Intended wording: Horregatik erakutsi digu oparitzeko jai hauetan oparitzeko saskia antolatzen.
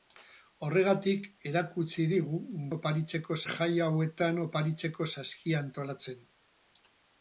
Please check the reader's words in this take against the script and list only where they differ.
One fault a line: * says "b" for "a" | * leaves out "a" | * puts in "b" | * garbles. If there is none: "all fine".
all fine